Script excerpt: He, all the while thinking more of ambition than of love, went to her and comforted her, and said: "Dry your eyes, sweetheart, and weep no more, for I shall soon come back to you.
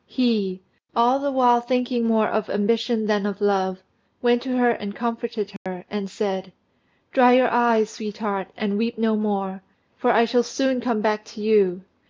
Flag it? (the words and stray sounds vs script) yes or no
yes